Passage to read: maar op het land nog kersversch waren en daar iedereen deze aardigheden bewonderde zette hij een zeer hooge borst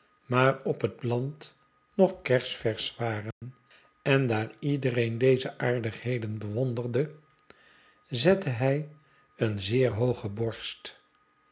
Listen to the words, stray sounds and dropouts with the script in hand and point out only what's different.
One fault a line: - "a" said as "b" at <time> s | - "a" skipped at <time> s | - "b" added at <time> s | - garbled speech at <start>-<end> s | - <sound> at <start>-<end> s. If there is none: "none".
- dropout at 3.3-3.4 s